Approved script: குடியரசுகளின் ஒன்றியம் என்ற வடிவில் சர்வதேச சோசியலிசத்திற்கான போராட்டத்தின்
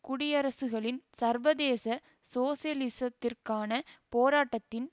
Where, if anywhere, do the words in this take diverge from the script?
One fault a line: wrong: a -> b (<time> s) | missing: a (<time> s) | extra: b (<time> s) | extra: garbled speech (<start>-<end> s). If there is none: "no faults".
missing: ஒன்றியம் என்ற வடிவில் (1.0 s)